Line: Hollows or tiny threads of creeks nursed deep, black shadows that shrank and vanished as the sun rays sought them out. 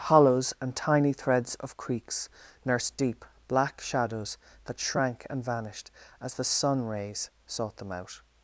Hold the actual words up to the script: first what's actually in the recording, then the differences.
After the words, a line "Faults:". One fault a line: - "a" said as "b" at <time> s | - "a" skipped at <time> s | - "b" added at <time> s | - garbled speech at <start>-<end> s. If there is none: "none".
Hollows and tiny threads of creeks nursed deep, black shadows that shrank and vanished as the sun rays sought them out.
Faults:
- "or" said as "and" at 0.6 s